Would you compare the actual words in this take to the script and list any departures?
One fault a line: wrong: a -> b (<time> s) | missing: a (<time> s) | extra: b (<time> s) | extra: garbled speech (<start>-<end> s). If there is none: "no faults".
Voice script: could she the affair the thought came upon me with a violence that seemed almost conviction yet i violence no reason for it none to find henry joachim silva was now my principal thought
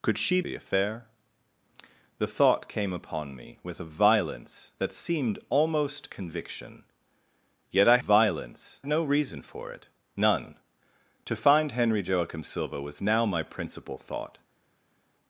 no faults